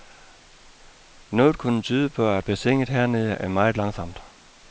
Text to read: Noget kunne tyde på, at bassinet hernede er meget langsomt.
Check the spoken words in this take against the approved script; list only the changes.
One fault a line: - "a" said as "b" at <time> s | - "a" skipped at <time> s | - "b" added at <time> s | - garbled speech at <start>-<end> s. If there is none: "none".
none